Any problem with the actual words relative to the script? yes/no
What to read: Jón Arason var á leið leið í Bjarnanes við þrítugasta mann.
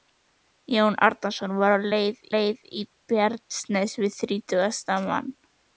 no